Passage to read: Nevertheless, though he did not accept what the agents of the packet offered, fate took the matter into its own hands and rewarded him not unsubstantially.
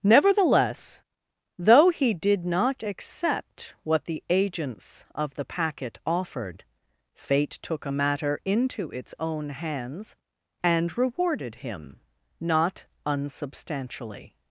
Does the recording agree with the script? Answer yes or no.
no